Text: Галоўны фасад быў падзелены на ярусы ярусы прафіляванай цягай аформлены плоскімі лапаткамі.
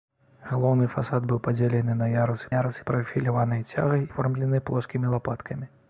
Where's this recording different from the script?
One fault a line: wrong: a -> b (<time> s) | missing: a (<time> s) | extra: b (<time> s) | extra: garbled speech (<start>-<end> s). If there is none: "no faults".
no faults